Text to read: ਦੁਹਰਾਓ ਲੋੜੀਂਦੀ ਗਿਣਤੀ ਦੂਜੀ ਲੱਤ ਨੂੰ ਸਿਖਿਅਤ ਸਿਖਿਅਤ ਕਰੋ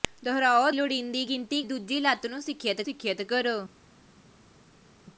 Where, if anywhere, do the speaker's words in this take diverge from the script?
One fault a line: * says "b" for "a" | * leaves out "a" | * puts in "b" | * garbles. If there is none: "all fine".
all fine